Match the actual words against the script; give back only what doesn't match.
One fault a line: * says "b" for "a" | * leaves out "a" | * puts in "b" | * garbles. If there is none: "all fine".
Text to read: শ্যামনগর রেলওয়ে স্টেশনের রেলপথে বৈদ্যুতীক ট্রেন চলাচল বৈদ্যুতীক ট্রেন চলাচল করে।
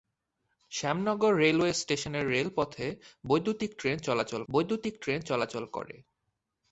all fine